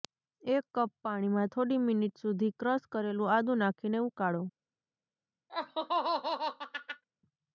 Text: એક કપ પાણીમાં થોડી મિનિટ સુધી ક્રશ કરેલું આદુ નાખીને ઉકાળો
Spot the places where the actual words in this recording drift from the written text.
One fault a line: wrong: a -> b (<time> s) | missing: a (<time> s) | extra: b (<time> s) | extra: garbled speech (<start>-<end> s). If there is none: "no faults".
no faults